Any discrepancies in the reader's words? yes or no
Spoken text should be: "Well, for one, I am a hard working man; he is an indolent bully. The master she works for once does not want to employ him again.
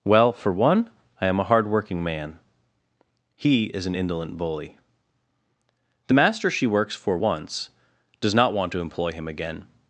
no